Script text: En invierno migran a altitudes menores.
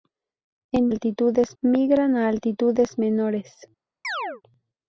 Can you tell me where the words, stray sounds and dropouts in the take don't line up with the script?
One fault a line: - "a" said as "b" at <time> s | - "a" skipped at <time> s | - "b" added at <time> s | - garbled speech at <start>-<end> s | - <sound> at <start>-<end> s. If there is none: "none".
- "invierno" said as "altitudes" at 0.9 s
- chirp at 4.0-4.4 s